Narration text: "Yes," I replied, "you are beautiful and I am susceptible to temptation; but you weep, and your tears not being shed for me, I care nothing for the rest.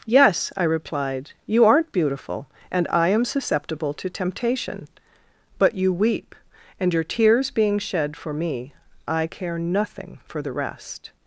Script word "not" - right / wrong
wrong